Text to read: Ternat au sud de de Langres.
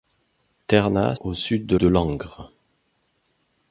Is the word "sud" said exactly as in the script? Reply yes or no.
yes